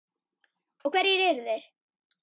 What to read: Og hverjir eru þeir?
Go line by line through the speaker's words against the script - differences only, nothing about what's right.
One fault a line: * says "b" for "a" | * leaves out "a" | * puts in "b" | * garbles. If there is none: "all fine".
all fine